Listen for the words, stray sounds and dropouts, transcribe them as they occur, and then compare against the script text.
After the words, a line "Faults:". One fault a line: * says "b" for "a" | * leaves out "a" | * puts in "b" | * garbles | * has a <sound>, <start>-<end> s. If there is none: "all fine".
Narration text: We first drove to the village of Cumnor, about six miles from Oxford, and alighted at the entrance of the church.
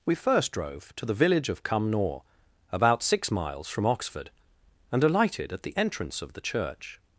We first drove to the village of Cumnor, about six miles from Oxford, and alighted at the entrance of the church.
Faults:
all fine